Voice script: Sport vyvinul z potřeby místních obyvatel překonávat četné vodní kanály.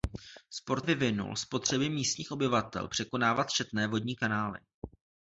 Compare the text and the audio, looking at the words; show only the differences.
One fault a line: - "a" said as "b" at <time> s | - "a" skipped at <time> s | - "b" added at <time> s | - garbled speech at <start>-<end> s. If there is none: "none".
none